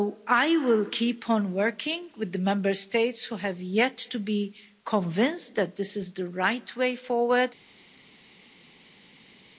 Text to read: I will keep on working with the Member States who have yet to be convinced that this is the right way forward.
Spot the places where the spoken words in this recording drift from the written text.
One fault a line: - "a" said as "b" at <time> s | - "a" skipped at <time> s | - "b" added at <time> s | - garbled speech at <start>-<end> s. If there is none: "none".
none